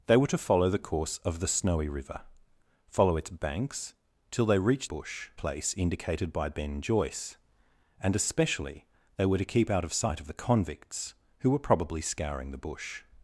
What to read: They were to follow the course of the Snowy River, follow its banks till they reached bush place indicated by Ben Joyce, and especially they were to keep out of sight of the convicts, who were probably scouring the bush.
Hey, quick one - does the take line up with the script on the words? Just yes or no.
yes